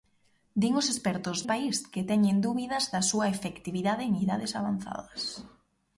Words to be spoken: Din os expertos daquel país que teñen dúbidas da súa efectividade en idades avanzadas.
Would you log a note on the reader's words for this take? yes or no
yes